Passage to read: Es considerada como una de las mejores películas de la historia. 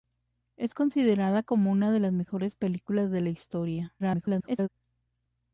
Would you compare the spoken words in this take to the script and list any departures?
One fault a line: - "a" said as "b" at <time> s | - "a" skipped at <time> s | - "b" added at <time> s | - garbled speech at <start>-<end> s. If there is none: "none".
- garbled speech at 4.0-4.7 s